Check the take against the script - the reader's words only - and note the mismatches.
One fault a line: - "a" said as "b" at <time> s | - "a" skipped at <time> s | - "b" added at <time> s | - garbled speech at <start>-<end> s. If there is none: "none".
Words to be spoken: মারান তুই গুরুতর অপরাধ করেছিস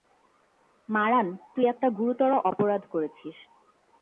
- "একটা" added at 1.7 s